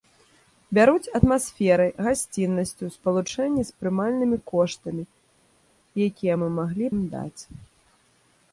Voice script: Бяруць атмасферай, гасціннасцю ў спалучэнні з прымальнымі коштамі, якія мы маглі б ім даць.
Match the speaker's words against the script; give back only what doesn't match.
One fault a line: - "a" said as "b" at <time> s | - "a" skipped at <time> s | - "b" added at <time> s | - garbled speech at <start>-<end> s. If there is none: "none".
- "б" skipped at 6.9 s